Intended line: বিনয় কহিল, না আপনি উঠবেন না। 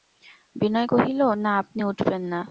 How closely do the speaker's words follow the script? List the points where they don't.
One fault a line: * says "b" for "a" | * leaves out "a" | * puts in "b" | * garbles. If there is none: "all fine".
all fine